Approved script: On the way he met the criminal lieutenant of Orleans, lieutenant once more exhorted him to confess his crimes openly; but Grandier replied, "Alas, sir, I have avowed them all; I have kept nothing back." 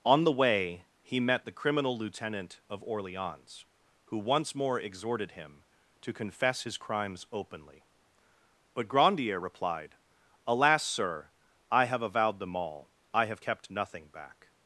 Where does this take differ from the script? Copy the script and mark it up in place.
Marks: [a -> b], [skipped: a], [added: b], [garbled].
On the way he met the criminal lieutenant of Orleans, [lieutenant -> who] once more exhorted him to confess his crimes openly; but Grandier replied, "Alas, sir, I have avowed them all; I have kept nothing back."